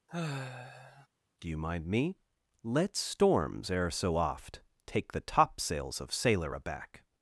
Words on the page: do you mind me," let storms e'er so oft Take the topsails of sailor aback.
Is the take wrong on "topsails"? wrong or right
right